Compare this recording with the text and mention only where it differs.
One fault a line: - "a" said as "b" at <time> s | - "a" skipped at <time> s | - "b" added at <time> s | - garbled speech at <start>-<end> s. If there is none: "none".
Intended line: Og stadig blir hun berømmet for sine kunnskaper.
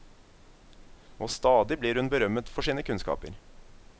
none